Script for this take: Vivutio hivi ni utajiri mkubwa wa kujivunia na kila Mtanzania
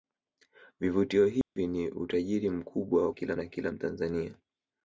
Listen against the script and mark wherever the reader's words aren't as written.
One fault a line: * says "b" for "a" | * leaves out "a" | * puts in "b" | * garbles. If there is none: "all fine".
* says "kila" for "kujivunia"